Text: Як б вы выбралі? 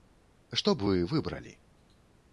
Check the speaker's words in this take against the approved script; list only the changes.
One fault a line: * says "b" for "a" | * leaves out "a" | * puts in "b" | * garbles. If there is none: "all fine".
* says "Што" for "Як"